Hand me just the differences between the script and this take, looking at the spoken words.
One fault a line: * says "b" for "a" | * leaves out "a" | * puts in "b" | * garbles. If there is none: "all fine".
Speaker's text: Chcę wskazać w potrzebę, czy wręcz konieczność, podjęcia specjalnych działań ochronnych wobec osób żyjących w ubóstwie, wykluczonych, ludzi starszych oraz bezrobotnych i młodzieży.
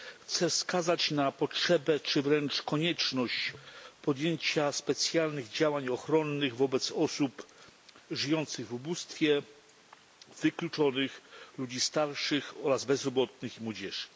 * says "na" for "w"